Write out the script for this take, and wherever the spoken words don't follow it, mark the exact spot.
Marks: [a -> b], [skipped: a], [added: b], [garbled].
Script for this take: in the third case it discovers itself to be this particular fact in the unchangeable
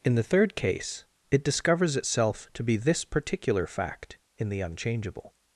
in the third case it discovers itself to be this particular fact in the unchangeable